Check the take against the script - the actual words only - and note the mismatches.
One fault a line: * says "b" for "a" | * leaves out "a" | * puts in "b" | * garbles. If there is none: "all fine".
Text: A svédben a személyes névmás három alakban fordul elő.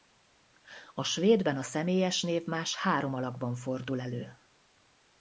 all fine